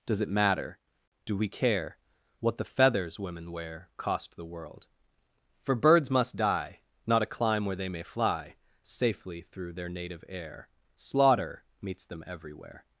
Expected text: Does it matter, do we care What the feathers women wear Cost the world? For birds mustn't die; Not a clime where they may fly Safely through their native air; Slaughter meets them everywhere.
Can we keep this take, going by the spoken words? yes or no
no